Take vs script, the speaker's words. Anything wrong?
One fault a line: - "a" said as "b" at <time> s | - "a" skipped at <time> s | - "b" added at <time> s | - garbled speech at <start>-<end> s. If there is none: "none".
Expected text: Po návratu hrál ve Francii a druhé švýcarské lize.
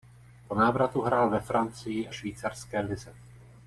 - "a druhé" skipped at 2.1 s